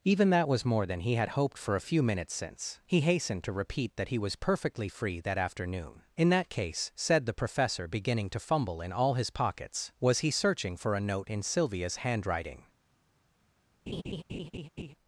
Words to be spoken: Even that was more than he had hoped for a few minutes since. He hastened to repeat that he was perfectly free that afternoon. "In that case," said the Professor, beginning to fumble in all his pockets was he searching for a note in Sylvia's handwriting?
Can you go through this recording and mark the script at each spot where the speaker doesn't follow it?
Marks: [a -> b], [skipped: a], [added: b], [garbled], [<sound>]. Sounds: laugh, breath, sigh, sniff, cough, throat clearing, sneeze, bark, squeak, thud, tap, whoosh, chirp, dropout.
Even that was more than he had hoped for a few minutes since. He hastened to repeat that he was perfectly free that afternoon. "In that case," said the Professor, beginning to fumble in all his pockets was he searching for a note in Sylvia's handwriting? [laugh]